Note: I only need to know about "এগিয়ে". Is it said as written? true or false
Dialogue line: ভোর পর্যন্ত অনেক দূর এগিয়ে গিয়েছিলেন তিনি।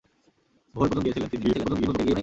false